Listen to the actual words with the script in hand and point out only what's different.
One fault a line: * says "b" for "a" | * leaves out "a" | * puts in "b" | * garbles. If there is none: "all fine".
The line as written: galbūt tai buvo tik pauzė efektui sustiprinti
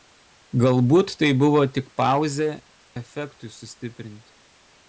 all fine